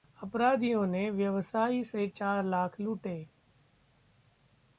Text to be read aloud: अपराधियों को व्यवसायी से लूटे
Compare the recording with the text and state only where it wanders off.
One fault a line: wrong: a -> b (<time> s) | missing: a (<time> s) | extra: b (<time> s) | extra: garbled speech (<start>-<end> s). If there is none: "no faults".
wrong: को -> ने (0.9 s)
extra: चार लाख (2.1 s)